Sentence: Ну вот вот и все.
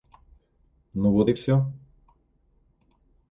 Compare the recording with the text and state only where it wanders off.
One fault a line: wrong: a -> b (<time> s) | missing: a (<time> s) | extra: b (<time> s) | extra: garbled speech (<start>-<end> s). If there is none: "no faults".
missing: вот (1.3 s)